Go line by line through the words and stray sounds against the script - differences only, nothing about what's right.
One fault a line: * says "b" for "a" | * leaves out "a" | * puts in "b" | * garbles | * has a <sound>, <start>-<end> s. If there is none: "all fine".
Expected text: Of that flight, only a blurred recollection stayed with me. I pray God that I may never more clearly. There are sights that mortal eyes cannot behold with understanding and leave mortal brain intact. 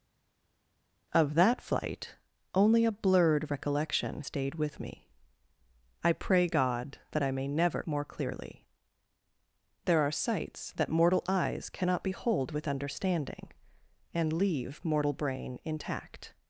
all fine